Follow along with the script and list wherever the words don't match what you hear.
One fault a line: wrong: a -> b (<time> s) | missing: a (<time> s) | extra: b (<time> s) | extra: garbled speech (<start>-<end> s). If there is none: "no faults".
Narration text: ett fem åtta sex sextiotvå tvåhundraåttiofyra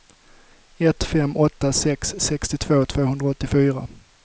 no faults